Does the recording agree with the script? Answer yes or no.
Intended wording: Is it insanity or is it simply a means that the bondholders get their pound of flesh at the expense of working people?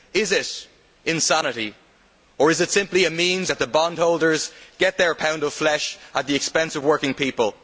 yes